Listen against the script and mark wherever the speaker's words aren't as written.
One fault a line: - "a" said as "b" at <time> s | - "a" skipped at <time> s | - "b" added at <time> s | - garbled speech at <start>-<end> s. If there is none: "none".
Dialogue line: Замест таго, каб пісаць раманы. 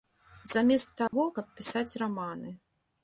none